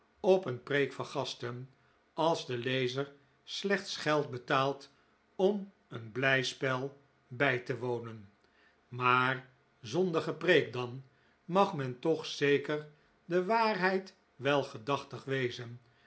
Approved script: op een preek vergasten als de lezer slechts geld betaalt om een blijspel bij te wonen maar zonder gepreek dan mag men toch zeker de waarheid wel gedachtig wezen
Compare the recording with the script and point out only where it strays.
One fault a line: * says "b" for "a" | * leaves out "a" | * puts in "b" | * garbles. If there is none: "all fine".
all fine